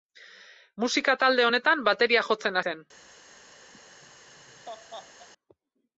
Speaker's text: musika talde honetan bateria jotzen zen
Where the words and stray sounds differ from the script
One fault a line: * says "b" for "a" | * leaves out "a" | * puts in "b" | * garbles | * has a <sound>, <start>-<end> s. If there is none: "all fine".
* has a laugh, 3.7-5.3 s